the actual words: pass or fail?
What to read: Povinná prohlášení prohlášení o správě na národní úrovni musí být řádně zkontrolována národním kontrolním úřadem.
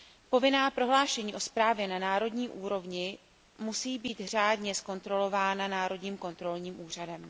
fail